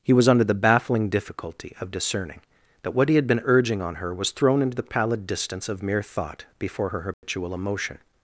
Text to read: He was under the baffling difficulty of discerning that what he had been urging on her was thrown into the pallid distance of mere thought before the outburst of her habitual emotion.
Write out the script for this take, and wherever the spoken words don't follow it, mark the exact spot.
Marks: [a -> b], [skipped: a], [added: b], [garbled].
He was under the baffling difficulty of discerning that what he had been urging on her was thrown into the pallid distance of mere thought before [skipped: the outburst of] her habitual emotion.